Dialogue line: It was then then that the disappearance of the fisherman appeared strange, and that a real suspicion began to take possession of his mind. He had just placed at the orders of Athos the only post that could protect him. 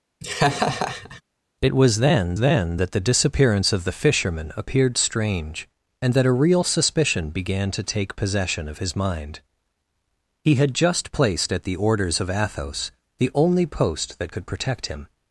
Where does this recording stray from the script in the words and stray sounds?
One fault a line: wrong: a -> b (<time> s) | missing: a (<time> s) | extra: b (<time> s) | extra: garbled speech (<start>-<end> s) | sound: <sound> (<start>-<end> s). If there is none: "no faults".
sound: laugh (0.2-1.2 s)